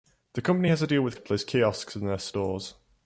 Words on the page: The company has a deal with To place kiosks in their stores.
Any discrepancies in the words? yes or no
no